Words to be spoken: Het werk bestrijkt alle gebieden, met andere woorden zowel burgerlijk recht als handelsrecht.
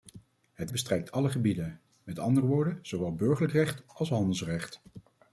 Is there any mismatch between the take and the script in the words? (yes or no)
yes